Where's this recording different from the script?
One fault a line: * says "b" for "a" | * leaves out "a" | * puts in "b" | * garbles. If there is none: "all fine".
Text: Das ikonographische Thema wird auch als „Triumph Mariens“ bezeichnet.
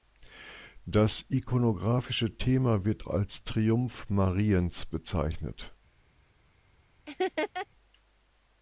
* leaves out "auch"